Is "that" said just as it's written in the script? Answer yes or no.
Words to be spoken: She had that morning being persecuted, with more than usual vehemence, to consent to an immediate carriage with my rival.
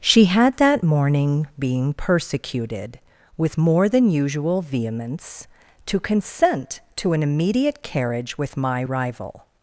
yes